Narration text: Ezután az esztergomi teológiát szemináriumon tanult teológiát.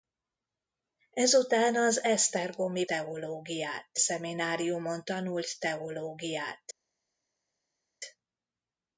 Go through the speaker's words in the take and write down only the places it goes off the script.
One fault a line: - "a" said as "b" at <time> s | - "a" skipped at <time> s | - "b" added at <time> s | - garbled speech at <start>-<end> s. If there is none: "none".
none